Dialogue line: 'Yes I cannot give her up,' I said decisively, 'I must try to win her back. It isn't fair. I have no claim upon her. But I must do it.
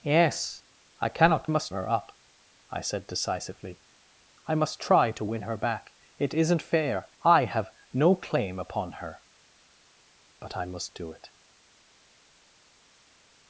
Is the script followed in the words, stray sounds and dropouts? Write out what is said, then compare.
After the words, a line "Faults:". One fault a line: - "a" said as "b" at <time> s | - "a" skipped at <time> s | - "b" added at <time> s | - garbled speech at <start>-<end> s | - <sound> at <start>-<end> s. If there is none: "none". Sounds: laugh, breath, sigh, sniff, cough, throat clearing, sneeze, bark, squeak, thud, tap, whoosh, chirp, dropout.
'Yes I cannot must her up,' I said decisively, 'I must try to win her back. It isn't fair. I have no claim upon her. But I must do it.
Faults:
- "give" said as "must" at 1.5 s